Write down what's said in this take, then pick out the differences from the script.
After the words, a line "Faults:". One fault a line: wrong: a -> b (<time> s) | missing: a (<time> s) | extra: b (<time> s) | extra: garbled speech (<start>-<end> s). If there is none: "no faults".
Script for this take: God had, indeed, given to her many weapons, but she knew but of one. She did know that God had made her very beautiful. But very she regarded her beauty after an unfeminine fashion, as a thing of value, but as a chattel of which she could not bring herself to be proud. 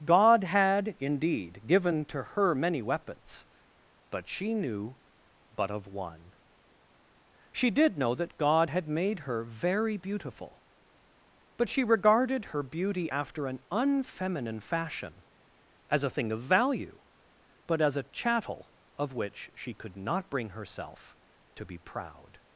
God had, indeed, given to her many weapons, but she knew but of one. She did know that God had made her very beautiful. But she regarded her beauty after an unfeminine fashion, as a thing of value, but as a chattel of which she could not bring herself to be proud.
Faults:
missing: very (11.7 s)